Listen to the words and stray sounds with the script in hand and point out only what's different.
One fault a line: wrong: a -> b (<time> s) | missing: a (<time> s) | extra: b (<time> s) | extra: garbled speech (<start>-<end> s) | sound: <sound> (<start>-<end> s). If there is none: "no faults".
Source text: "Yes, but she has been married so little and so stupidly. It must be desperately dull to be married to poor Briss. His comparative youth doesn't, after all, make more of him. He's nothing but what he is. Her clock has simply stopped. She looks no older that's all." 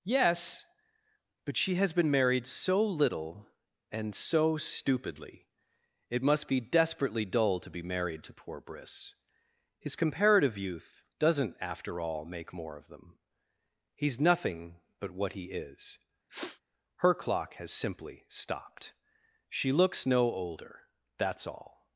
wrong: him -> them (12.9 s)
sound: sniff (16.3-16.6 s)